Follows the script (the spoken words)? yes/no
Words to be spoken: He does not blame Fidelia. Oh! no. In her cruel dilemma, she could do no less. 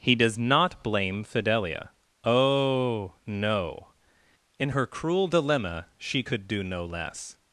yes